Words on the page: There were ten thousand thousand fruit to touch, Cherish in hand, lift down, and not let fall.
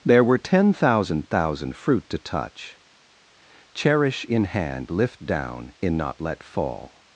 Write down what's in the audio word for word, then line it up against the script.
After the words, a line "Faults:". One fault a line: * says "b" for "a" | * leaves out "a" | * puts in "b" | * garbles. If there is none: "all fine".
There were ten thousand thousand fruit to touch, Cherish in hand, lift down, in not let fall.
Faults:
* says "in" for "and"